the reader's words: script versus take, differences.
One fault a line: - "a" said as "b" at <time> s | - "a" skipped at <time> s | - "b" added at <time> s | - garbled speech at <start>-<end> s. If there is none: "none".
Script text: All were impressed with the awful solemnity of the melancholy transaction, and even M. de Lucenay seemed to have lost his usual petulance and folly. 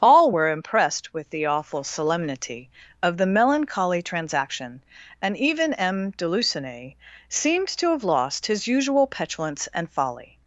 none